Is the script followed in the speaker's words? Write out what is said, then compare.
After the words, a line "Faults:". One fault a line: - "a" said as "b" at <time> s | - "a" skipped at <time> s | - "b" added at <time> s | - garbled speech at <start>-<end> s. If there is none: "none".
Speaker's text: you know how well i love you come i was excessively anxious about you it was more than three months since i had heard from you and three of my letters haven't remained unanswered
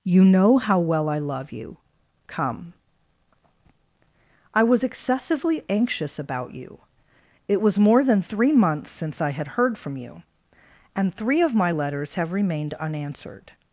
you know how well i love you come i was excessively anxious about you it was more than three months since i had heard from you and three of my letters have remained unanswered
Faults:
- "haven't" said as "have" at 12.1 s